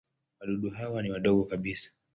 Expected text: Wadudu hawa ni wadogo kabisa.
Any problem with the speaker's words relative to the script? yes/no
no